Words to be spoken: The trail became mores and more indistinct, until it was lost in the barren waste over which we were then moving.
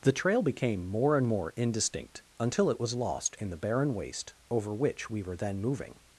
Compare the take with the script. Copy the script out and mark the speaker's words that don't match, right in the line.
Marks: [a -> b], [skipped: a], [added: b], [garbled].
The trail became [mores -> more] and more indistinct, until it was lost in the barren waste over which we were then moving.